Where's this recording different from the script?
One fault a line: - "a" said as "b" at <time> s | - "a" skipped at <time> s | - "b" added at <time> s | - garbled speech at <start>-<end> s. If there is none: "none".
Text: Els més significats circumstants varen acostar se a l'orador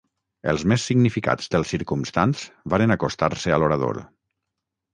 - "dels" added at 1.5 s